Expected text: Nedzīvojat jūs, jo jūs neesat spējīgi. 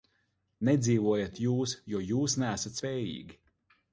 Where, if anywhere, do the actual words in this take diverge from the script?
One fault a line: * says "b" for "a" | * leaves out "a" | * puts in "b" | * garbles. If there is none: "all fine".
all fine